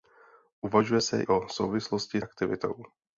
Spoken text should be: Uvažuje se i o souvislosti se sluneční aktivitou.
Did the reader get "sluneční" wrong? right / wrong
wrong